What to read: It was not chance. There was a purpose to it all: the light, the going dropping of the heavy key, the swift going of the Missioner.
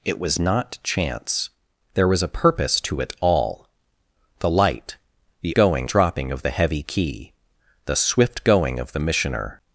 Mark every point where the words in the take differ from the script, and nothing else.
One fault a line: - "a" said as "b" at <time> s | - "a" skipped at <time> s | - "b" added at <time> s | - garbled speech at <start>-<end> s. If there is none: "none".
none